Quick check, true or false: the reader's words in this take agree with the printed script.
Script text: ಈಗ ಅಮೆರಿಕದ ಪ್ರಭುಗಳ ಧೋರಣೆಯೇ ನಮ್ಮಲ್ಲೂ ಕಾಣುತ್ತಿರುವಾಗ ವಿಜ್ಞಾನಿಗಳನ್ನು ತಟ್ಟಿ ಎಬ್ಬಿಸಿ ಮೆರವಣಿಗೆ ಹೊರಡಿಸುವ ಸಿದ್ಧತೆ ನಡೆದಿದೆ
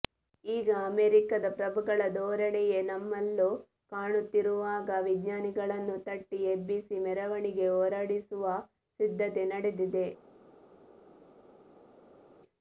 true